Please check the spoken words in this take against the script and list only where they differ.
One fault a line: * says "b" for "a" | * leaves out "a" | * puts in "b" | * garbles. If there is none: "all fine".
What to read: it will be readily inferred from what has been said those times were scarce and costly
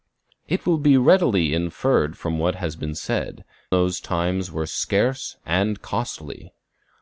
all fine